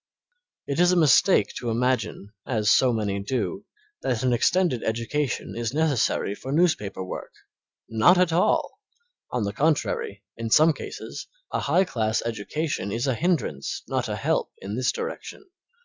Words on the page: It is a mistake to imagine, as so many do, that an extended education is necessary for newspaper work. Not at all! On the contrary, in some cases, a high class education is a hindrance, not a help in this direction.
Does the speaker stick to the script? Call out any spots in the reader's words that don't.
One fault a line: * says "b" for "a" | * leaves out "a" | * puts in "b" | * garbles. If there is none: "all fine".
all fine